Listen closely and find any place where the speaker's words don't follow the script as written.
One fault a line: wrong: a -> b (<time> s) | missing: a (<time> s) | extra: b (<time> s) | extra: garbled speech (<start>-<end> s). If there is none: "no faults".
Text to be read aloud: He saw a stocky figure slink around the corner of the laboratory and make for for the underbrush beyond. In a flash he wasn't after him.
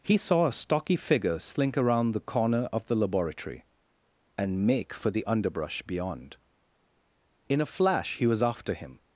missing: for (5.1 s)
wrong: wasn't -> was (8.2 s)